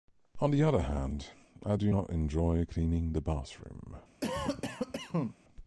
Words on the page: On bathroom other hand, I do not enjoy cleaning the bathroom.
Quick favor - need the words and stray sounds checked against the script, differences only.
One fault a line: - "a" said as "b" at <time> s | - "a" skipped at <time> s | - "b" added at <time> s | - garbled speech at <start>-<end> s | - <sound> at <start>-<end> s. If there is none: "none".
- "bathroom" said as "the" at 0.5 s
- cough at 4.2-5.4 s